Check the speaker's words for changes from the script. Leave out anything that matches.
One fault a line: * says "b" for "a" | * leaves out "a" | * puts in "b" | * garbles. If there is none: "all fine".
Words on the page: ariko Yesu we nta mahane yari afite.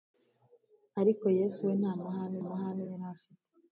* puts in "mahane"